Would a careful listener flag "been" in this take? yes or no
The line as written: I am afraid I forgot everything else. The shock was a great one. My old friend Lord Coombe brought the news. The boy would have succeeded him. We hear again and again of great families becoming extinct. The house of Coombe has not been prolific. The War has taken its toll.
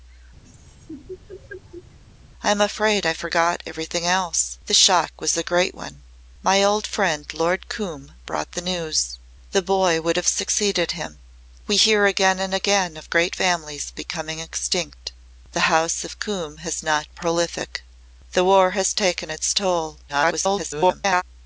yes